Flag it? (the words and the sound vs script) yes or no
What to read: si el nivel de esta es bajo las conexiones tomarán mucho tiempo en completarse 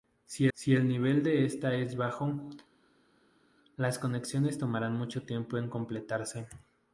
yes